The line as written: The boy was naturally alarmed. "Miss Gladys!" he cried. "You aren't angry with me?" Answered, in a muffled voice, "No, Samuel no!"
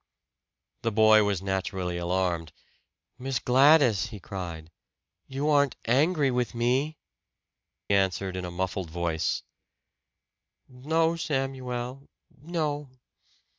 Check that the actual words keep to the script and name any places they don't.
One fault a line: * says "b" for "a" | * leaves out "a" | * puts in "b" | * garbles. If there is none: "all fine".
all fine